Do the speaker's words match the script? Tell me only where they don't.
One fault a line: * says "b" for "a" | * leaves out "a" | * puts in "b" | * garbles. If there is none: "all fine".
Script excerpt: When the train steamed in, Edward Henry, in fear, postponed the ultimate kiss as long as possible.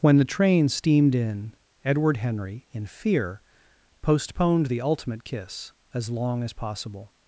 all fine